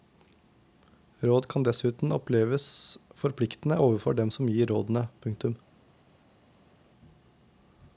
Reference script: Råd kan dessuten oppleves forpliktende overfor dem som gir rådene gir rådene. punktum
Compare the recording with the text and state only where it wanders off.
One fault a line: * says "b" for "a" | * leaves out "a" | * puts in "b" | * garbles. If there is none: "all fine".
* leaves out "gir rådene"